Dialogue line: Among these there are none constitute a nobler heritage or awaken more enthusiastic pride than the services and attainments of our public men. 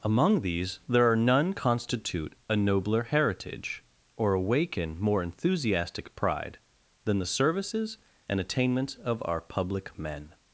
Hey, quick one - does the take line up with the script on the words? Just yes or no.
yes